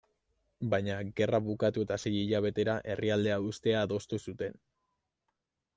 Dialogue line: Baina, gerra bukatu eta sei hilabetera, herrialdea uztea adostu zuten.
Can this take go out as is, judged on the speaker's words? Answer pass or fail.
pass